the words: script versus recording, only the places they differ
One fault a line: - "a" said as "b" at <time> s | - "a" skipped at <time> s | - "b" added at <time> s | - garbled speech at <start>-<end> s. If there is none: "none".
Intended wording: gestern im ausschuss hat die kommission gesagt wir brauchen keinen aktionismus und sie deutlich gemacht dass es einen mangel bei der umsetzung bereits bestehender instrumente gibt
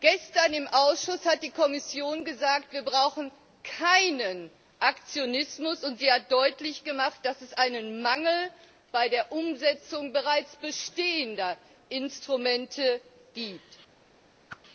- "hat" added at 6.1 s